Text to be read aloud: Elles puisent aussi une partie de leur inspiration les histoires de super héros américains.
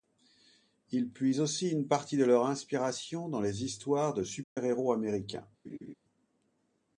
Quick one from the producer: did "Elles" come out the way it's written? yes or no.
no